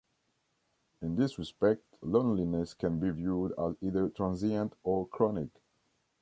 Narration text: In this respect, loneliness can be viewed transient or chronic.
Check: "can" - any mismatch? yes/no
no